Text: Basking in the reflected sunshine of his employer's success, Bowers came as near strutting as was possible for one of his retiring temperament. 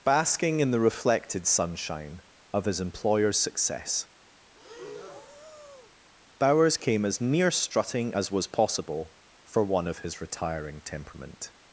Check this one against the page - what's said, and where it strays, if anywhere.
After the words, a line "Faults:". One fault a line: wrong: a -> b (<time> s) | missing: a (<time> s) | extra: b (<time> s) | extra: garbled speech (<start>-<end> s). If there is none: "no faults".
Basking in the reflected sunshine of his employer's success, Bowers came as near strutting as was possible for one of his retiring temperament.
Faults:
no faults